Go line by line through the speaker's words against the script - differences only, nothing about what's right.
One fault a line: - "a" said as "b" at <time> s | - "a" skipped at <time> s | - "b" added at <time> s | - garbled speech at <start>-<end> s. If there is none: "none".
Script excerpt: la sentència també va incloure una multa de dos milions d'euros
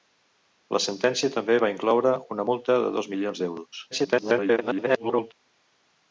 - garbled speech at 3.9-5.3 s